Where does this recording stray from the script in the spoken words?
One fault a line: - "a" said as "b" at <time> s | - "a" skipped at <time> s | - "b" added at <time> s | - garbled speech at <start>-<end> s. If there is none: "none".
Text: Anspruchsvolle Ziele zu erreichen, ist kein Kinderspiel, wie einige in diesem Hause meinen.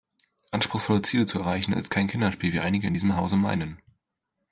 none